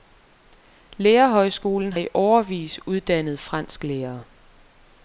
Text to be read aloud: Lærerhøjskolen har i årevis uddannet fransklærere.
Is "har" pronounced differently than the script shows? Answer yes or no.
yes